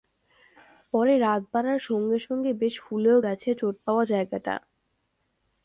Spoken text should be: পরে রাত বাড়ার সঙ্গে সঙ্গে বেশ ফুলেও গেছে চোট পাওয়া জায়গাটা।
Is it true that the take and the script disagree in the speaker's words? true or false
false